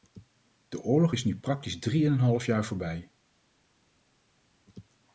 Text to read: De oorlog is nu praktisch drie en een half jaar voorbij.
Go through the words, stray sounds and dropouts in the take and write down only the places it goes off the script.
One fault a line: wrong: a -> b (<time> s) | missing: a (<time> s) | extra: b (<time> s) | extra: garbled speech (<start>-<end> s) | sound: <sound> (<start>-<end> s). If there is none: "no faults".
no faults